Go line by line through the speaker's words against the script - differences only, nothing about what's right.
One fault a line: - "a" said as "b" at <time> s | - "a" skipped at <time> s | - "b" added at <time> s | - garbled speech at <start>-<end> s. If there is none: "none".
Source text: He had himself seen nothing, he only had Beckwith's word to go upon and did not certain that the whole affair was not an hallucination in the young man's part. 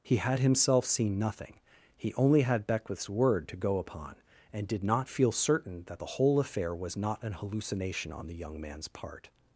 - "feel" added at 5.1 s
- "in" said as "on" at 8.1 s